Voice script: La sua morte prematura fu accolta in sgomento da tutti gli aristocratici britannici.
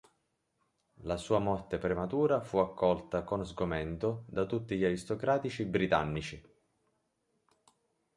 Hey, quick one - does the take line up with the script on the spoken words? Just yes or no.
no